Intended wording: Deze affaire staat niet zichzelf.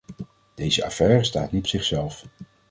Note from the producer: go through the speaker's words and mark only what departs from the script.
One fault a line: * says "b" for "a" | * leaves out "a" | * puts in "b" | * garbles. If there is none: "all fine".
all fine